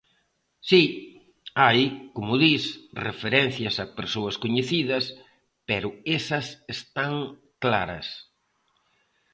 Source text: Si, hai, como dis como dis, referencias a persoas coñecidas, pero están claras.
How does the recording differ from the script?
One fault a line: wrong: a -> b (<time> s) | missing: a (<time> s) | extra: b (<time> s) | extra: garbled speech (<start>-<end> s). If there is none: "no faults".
missing: como dis (2.6 s)
extra: esas (6.2 s)